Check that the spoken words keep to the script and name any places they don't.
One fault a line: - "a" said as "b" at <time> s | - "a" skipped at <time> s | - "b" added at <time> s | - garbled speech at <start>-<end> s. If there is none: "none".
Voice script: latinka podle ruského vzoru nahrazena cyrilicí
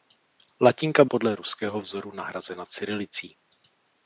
none